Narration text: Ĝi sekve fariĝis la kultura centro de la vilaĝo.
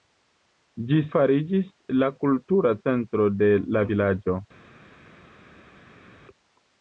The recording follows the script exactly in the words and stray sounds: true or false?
false